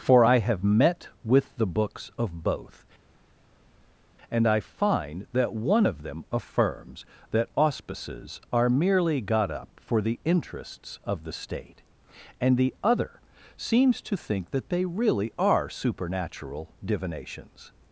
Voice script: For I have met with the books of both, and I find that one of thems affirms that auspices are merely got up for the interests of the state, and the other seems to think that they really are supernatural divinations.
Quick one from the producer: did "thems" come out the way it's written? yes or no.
no